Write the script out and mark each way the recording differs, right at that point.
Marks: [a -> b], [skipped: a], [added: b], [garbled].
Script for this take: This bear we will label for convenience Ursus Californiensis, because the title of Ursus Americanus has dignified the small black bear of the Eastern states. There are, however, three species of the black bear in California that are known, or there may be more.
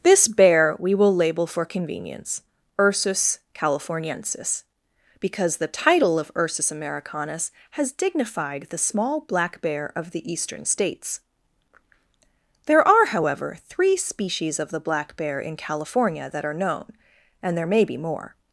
This bear we will label for convenience Ursus Californiensis, because the title of Ursus Americanus has dignified the small black bear of the Eastern states. There are, however, three species of the black bear in California that are known, [or -> and] there may be more.